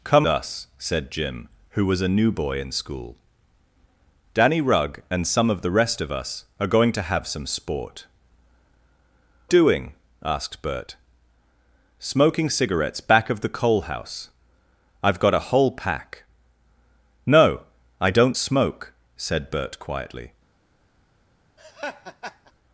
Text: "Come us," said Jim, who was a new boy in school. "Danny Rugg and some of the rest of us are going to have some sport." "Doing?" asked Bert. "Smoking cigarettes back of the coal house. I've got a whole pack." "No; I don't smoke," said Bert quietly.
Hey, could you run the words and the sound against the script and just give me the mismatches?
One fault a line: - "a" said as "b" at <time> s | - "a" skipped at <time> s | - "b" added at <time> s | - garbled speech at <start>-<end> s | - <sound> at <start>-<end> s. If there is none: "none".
- laugh at 21.6-22.5 s